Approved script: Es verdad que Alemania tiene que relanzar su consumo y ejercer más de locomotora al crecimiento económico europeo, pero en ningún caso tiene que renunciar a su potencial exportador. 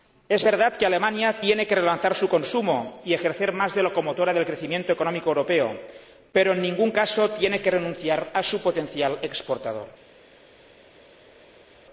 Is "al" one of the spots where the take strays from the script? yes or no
yes